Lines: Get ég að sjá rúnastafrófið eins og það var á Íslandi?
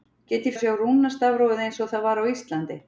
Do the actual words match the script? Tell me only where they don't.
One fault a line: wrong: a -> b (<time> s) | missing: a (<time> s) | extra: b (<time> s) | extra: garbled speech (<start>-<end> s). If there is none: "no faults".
no faults